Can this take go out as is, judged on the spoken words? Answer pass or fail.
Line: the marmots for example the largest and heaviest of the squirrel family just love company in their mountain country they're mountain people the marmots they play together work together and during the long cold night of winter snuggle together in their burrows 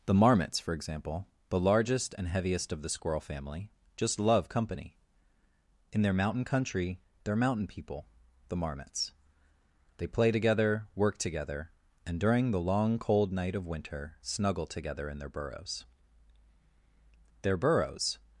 fail